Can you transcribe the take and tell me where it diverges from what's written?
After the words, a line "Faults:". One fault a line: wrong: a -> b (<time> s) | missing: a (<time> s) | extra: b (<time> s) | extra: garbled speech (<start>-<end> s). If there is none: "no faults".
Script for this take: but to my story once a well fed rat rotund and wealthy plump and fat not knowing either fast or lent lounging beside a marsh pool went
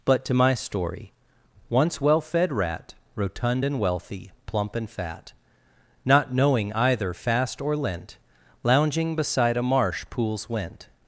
but to my story once well fed rat rotund and wealthy plump and fat not knowing either fast or lent lounging beside a marsh pools went
Faults:
missing: a (2.0 s)
wrong: pool -> pools (10.1 s)